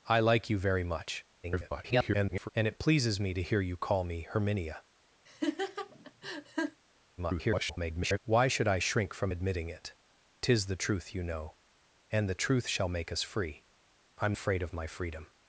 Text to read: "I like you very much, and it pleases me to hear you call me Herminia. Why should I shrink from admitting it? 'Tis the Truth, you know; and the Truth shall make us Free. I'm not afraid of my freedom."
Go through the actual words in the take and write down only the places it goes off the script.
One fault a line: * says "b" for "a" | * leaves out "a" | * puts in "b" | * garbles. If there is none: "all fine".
* garbles
* garbles
* leaves out "not"